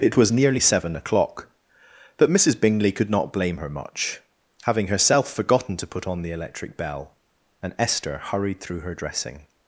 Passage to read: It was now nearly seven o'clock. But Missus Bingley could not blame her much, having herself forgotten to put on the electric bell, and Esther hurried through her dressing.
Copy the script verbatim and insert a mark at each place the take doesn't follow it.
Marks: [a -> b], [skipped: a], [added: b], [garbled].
It was [skipped: now] nearly seven o'clock. But Missus Bingley could not blame her much, having herself forgotten to put on the electric bell, and Esther hurried through her dressing.